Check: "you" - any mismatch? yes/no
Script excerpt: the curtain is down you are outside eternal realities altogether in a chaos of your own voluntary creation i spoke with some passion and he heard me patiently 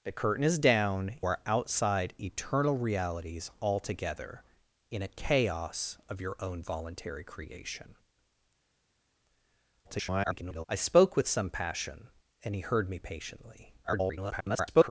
yes